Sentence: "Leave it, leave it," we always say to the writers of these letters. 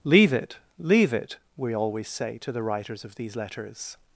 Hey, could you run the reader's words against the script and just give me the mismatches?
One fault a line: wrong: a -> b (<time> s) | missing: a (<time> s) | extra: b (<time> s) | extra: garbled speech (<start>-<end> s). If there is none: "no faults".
no faults